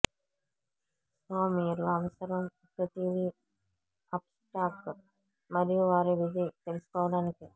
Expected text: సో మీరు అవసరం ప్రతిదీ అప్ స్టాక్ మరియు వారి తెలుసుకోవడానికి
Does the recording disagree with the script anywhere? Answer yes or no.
yes